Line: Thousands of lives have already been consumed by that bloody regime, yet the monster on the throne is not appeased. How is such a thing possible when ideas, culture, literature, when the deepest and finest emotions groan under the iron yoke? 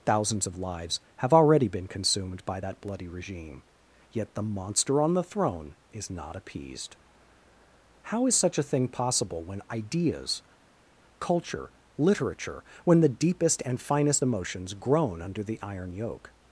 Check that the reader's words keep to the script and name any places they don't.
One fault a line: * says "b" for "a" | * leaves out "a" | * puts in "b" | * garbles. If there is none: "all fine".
all fine